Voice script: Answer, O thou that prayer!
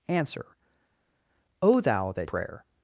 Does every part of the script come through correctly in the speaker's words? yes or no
yes